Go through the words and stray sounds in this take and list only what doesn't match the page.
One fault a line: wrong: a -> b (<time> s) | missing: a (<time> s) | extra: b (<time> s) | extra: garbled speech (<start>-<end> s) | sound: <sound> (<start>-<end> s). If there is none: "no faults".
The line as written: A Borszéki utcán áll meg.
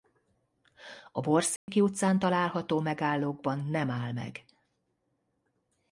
sound: dropout (1.6-1.7 s)
extra: található megállókban nem (2.2 s)